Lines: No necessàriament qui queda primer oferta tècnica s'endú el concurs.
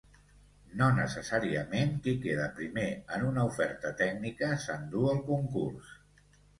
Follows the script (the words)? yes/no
no